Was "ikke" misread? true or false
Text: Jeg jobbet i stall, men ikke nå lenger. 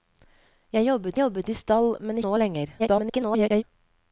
true